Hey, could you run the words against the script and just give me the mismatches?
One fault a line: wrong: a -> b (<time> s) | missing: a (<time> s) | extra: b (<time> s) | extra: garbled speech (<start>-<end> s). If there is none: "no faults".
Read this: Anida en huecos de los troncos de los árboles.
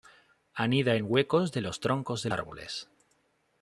missing: los (2.3 s)